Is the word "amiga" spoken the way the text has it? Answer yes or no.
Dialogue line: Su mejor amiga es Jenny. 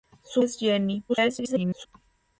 no